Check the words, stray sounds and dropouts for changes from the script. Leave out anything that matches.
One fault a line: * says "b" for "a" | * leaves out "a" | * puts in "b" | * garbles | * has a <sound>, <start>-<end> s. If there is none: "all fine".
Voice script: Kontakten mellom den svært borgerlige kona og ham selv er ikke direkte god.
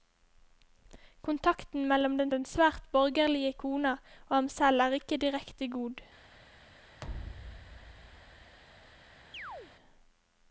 * puts in "den"
* has a thud, 7.0-8.6 s
* has a chirp, 9.3-9.7 s